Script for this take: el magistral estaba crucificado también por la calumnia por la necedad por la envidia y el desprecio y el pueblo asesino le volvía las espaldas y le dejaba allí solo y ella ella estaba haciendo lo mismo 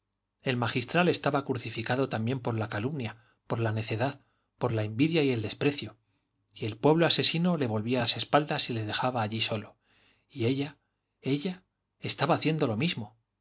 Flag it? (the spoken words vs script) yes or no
no